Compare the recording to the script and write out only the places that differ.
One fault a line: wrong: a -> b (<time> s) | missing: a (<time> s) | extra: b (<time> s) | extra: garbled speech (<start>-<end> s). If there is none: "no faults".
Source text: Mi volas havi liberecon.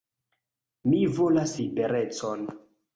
missing: havi (1.6 s)